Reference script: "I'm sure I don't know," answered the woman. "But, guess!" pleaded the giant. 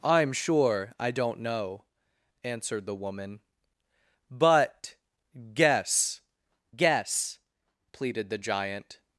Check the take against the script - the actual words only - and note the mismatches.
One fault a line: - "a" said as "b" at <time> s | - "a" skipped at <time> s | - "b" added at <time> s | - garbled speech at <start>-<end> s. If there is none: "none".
- "guess" added at 6.8 s